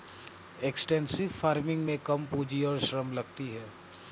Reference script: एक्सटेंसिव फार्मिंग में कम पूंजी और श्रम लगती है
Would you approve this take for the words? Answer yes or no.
yes